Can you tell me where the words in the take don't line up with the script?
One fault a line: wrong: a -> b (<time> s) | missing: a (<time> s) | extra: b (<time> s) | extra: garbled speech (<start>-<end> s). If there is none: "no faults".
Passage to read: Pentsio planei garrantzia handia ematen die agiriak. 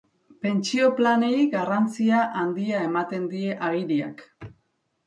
no faults